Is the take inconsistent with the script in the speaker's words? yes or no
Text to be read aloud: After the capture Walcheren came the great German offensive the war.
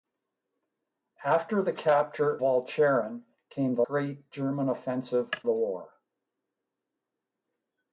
no